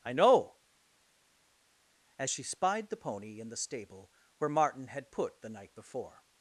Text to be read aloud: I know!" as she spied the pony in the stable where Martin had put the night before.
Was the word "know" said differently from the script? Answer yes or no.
no